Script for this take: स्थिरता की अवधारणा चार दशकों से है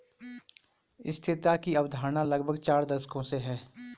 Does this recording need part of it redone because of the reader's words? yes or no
yes